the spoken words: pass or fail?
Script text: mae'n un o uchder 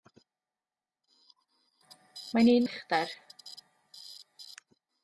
pass